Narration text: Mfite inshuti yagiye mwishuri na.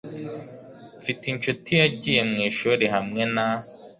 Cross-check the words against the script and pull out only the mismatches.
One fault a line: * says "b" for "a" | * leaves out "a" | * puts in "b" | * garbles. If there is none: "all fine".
* puts in "hamwe"